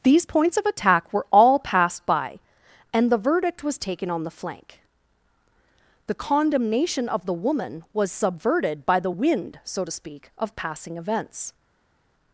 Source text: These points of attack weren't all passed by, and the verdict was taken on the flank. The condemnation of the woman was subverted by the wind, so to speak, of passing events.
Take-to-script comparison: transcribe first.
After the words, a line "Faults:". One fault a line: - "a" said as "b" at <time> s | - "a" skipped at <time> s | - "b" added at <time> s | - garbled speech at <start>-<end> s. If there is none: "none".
These points of attack were all passed by, and the verdict was taken on the flank. The condemnation of the woman was subverted by the wind, so to speak, of passing events.
Faults:
- "weren't" said as "were" at 1.1 s